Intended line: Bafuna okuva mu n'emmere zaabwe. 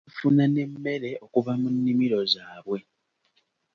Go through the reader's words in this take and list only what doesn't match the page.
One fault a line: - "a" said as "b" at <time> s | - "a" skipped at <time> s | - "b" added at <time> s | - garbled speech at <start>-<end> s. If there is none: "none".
- "n'emmere" added at 0.5 s
- "n'emmere" said as "nnimiro" at 1.8 s